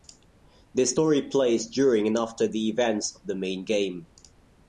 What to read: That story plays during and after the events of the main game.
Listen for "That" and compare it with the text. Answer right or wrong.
wrong